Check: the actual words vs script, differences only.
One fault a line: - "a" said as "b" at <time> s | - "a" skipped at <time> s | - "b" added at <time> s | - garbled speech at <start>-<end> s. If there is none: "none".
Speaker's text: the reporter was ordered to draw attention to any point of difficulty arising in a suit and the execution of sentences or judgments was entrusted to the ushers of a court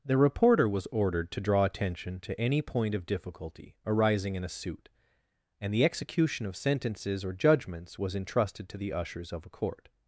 none